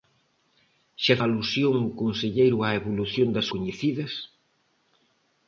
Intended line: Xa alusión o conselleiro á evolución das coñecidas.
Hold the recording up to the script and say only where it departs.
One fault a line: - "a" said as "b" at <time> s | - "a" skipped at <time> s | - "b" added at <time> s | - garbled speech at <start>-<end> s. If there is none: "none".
none